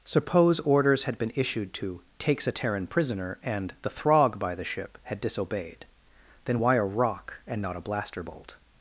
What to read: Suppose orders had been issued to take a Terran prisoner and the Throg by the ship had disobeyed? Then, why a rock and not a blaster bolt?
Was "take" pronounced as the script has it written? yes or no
no